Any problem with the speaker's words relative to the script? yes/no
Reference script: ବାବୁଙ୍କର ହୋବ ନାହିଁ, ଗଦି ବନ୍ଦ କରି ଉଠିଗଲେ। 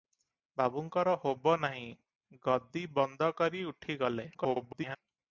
yes